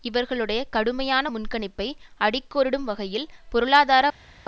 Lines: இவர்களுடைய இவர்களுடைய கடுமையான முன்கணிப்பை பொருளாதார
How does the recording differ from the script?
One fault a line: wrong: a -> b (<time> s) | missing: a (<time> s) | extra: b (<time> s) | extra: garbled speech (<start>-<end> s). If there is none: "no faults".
missing: இவர்களுடைய (0.6 s)
extra: அடிக்கோடிடும் வகையில் (2.2 s)